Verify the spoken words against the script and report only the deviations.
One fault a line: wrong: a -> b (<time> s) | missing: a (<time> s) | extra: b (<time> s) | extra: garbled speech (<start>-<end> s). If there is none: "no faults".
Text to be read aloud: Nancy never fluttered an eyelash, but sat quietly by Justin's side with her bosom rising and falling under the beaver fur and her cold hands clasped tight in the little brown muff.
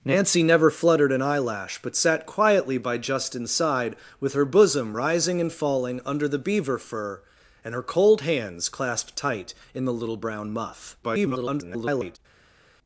extra: garbled speech (11.0-12.2 s)